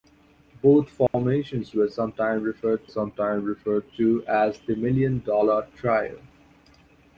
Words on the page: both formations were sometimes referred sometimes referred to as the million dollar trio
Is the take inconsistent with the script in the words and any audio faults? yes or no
yes